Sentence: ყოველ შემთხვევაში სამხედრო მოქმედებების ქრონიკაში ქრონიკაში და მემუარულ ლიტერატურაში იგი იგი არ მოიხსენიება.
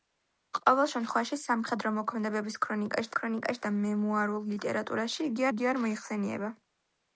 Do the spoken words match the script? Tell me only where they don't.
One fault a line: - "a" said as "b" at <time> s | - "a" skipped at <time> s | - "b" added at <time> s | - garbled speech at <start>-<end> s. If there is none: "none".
none